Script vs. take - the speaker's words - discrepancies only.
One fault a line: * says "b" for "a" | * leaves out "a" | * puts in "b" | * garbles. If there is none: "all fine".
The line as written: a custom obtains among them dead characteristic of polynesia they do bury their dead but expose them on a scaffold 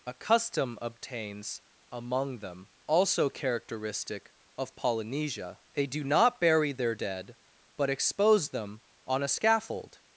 * says "also" for "dead"
* puts in "not"